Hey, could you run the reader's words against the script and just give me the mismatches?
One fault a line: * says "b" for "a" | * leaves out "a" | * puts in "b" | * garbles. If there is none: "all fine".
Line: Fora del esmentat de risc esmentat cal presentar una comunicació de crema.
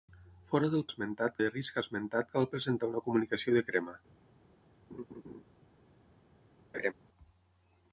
all fine